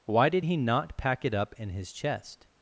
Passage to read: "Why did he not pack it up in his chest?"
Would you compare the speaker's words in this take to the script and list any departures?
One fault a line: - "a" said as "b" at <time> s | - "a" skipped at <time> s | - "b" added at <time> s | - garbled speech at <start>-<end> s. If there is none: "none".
none